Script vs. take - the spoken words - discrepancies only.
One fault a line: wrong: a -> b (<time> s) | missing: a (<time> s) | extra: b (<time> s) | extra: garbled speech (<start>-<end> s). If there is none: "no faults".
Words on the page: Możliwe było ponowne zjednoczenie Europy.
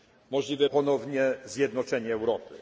missing: było (0.7 s)